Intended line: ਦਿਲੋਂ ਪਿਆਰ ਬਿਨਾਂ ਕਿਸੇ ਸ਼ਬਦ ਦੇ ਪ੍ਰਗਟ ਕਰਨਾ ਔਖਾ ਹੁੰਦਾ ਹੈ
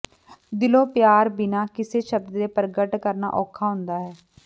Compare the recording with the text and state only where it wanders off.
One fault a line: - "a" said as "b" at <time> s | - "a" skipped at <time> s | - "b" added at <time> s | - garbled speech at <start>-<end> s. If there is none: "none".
none